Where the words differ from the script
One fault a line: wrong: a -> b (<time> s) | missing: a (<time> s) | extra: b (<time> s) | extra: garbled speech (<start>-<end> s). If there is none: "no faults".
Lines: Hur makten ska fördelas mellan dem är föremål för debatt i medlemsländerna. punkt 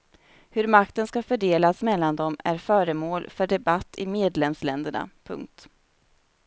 no faults